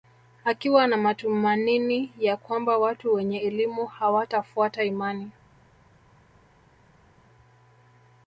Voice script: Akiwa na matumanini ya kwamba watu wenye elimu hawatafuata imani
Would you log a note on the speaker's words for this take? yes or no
no